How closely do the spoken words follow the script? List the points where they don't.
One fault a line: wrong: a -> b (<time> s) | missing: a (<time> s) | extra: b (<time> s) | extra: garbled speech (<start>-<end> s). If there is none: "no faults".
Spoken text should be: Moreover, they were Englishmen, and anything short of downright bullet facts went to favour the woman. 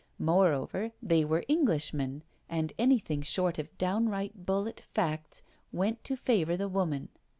no faults